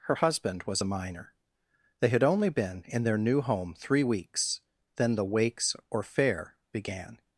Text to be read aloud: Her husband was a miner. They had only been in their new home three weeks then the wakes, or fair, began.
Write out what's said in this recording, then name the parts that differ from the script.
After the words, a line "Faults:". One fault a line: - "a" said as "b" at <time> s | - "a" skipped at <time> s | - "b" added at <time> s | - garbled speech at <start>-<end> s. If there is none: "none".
Her husband was a miner. They had only been in their new home three weeks then the wakes, or fair, began.
Faults:
none